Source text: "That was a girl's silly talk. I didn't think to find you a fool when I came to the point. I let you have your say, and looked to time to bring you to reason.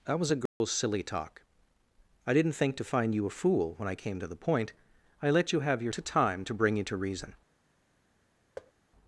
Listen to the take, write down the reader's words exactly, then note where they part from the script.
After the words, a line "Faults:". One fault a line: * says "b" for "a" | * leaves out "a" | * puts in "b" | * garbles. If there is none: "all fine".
"That was a girl's silly talk. I didn't think to find you a fool when I came to the point. I let you have your to time to bring you to reason.
Faults:
* leaves out "say and looked"